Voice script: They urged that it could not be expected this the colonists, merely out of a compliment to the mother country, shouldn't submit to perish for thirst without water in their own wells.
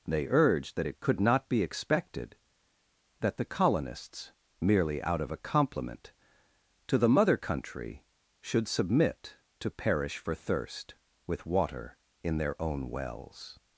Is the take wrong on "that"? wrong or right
right